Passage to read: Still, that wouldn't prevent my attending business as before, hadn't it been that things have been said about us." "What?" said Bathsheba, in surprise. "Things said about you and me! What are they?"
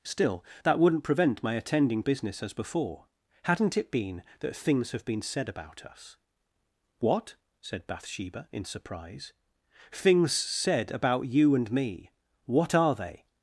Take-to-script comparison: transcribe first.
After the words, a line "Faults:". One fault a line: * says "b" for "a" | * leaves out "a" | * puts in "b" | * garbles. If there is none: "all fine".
Still, that wouldn't prevent my attending business as before, hadn't it been that things have been said about us." "What?" said Bathsheba, in surprise. "Things said about you and me! What are they?"
Faults:
all fine